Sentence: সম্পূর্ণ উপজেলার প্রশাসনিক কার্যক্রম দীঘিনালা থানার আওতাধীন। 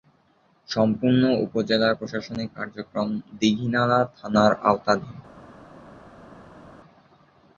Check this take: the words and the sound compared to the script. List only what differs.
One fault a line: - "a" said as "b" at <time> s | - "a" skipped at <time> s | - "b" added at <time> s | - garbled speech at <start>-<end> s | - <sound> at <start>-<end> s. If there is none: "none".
none